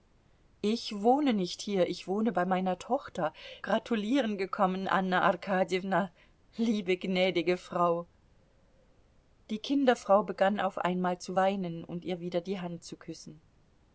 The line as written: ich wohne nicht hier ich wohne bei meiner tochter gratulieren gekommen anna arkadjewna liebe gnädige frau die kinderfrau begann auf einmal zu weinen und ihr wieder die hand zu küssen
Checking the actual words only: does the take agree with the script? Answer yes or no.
yes